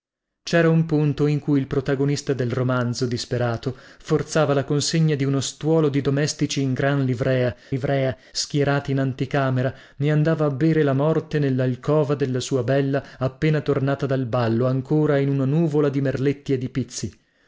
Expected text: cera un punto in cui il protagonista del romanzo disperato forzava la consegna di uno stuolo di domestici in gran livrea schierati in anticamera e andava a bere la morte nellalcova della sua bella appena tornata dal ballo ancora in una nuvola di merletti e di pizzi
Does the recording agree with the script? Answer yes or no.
no